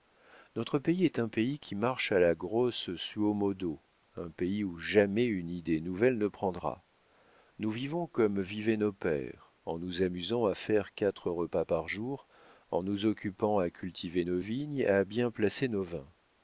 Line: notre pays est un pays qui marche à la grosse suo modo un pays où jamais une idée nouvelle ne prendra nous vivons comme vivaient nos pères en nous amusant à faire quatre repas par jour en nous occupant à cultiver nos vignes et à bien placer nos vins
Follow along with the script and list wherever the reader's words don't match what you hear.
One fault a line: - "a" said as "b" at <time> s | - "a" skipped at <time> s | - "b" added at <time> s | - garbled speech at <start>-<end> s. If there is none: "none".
none